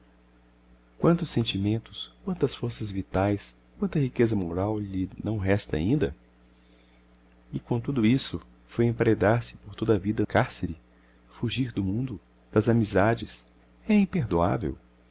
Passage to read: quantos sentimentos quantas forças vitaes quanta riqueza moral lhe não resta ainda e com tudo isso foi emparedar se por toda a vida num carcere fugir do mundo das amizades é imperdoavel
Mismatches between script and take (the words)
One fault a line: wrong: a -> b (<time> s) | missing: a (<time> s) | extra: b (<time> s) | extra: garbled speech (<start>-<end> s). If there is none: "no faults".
missing: num (10.2 s)